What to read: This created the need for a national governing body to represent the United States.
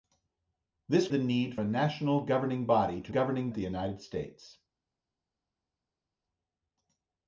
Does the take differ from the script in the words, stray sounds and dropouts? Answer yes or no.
yes